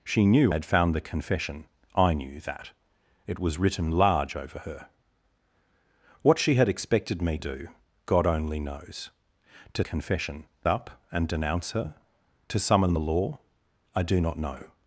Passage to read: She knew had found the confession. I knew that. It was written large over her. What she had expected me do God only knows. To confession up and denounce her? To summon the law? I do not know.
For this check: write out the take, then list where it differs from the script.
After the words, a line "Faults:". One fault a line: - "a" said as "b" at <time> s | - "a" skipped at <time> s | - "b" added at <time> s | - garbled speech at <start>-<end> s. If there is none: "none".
She knew had found the confession. I knew that. It was written large over her. What she had expected me do God only knows. To confession up and denounce her? To summon the law? I do not know.
Faults:
none